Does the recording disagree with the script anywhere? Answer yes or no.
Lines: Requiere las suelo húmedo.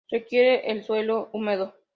yes